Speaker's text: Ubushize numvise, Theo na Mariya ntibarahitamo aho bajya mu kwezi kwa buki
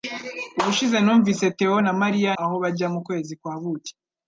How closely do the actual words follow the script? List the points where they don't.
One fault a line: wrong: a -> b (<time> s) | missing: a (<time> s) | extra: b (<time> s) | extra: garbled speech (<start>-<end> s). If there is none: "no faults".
missing: ntibarahitamo (2.3 s)